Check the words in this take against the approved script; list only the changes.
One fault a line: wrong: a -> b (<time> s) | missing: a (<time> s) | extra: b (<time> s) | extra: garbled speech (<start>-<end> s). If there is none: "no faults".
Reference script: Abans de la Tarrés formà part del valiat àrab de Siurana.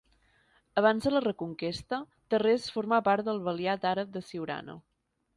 extra: reconquesta (1.2 s)